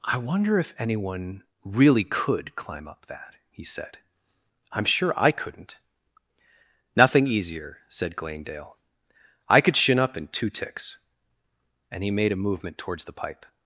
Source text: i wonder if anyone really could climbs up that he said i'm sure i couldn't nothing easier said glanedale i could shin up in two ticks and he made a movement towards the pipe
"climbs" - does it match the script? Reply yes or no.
no